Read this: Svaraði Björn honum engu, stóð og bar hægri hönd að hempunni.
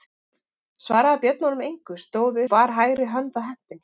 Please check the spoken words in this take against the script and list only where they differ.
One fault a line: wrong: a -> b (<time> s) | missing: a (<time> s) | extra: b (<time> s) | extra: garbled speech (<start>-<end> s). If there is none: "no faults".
no faults